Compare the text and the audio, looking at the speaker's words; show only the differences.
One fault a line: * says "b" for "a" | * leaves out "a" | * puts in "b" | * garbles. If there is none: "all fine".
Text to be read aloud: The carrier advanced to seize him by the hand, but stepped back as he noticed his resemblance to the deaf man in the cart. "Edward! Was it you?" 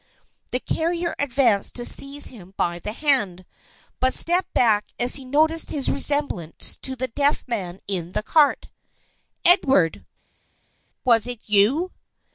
all fine